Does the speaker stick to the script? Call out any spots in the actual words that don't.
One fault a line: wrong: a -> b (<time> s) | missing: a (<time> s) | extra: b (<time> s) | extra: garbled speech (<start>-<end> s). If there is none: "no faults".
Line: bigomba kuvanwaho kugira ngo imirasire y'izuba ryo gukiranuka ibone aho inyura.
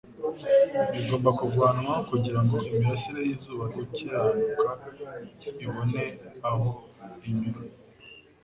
missing: ryo (3.6 s)